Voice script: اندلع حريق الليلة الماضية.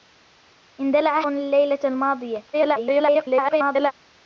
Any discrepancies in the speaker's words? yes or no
yes